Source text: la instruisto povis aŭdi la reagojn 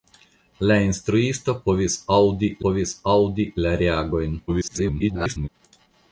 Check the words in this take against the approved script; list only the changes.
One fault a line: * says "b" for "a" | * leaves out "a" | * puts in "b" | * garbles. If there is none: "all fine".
* puts in "povis aŭdi"
* garbles